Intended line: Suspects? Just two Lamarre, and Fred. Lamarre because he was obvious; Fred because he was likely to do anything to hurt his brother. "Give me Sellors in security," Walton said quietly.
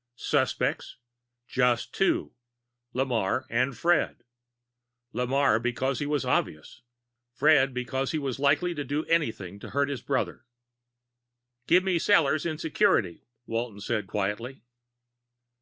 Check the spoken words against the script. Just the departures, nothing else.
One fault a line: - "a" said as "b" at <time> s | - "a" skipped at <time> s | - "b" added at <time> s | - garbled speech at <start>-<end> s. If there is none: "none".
none